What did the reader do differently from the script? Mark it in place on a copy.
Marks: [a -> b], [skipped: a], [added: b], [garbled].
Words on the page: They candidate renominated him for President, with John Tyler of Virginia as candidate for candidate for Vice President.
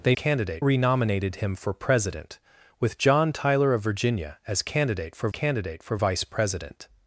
They candidate renominated him for President, with John Tyler of Virginia as candidate for candidate for Vice President.